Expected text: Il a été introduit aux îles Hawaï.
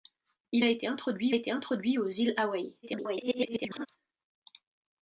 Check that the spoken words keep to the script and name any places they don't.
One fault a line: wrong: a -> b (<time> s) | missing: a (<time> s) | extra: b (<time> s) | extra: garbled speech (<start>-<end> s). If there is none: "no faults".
extra: été introduit (1.3 s)
extra: garbled speech (2.8-3.9 s)